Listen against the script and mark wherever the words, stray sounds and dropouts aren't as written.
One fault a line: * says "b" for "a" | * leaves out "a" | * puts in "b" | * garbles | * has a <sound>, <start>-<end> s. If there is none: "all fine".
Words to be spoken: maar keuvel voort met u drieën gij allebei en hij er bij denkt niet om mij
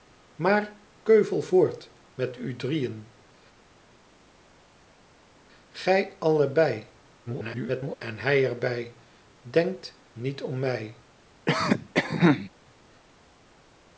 * garbles
* has a cough, 11.5-12.5 s